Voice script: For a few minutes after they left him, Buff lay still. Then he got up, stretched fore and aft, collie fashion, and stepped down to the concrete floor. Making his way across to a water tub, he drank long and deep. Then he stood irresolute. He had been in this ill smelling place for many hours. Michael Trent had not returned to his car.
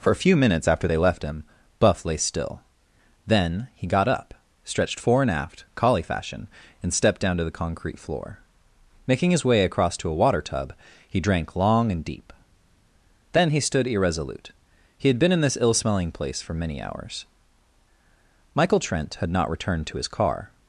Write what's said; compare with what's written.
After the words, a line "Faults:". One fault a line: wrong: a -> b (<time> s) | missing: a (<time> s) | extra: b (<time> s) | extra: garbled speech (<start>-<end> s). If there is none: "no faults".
For a few minutes after they left him, Buff lay still. Then he got up, stretched fore and aft, collie fashion, and stepped down to the concrete floor. Making his way across to a water tub, he drank long and deep. Then he stood irresolute. He had been in this ill smelling place for many hours. Michael Trent had not returned to his car.
Faults:
no faults